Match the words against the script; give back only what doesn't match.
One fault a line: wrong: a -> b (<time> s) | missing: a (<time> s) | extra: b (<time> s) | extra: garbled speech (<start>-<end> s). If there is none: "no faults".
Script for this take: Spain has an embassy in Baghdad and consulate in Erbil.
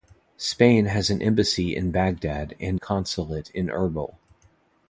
no faults